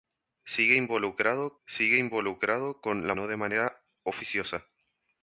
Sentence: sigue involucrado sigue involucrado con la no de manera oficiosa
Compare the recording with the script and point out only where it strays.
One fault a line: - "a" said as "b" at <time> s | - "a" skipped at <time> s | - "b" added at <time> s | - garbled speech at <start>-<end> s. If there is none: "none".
none